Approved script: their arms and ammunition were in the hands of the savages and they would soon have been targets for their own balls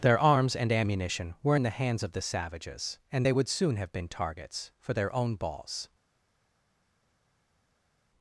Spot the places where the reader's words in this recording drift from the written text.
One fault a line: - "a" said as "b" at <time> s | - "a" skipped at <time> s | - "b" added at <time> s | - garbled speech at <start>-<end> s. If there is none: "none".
none